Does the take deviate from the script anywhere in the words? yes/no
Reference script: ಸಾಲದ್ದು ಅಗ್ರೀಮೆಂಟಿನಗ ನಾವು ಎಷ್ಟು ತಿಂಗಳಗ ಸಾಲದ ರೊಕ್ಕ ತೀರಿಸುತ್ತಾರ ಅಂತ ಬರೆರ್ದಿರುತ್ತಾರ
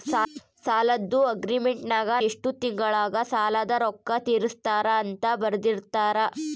yes